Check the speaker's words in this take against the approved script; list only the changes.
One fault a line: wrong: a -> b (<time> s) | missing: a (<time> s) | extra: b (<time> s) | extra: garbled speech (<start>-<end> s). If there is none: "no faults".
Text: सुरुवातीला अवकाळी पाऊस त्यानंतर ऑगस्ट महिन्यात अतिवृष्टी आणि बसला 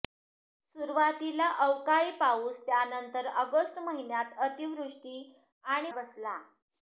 no faults